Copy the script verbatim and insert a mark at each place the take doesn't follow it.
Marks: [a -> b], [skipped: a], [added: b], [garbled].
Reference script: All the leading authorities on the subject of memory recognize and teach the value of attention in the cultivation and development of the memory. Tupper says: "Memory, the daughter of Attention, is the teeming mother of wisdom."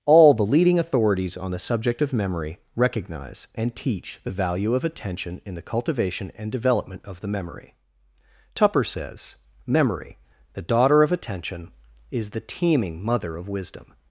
All the leading authorities on the subject of memory recognize and teach the value of attention in the cultivation and development of the memory. Tupper says: "Memory, the daughter of Attention, is the teeming mother of wisdom."